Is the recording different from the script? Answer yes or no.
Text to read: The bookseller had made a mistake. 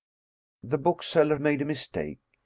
yes